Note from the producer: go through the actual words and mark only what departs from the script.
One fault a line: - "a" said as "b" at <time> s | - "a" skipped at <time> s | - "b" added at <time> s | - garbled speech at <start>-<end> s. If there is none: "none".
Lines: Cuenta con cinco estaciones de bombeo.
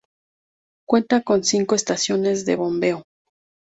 none